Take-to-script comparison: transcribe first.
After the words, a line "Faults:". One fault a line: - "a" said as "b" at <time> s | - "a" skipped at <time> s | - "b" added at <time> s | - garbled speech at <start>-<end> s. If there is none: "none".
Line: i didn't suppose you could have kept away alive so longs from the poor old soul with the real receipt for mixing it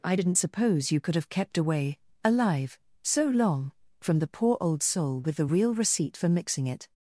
i didn't suppose you could have kept away alive so long from the poor old soul with the real receipt for mixing it
Faults:
- "longs" said as "long" at 3.2 s